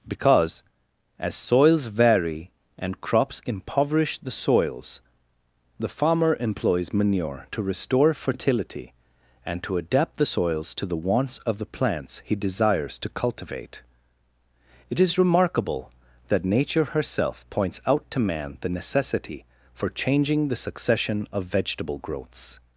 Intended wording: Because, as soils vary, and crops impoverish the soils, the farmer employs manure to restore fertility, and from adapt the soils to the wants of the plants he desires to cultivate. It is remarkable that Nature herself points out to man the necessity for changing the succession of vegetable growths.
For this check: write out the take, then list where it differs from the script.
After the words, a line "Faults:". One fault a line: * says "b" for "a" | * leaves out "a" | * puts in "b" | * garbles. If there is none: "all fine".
Because, as soils vary, and crops impoverish the soils, the farmer employs manure to restore fertility, and to adapt the soils to the wants of the plants he desires to cultivate. It is remarkable that Nature herself points out to man the necessity for changing the succession of vegetable growths.
Faults:
* says "to" for "from"